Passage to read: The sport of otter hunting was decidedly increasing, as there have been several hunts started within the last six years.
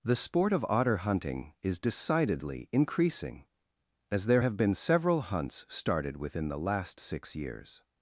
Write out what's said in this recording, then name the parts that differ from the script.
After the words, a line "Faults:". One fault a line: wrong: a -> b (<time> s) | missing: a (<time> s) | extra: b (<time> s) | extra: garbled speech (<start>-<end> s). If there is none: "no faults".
The sport of otter hunting is decidedly increasing, as there have been several hunts started within the last six years.
Faults:
wrong: was -> is (1.6 s)